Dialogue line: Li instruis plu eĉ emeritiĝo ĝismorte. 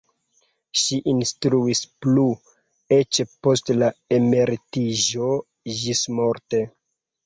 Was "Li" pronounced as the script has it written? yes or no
no